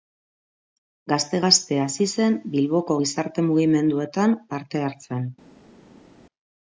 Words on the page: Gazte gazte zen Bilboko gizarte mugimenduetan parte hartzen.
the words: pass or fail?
fail